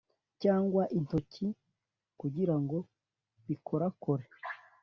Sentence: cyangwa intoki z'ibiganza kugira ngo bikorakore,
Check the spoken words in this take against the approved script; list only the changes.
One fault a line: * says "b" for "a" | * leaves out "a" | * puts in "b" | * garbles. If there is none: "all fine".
* leaves out "z'ibiganza"